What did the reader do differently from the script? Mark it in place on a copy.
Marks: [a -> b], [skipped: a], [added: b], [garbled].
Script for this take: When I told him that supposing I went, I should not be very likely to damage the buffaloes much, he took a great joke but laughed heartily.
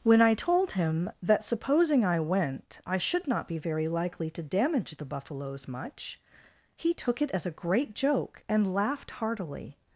When I told him that supposing I went, I should not be very likely to damage the buffaloes much, he took [added: it as] a great joke [but -> and] laughed heartily.